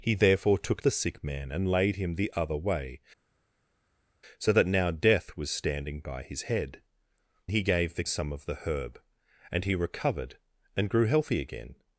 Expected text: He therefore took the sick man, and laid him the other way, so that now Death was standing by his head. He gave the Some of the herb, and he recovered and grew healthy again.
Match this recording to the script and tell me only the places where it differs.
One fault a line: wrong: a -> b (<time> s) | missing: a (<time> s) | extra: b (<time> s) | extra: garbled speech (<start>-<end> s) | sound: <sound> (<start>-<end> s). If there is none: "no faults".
no faults